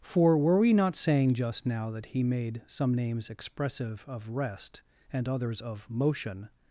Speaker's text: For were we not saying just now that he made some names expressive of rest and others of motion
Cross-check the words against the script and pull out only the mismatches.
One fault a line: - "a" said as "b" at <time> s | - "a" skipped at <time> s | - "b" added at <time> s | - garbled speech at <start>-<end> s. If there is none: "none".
none